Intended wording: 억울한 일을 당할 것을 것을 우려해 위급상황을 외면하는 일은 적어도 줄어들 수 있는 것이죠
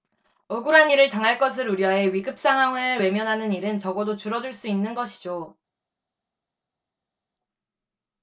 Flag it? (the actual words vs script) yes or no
yes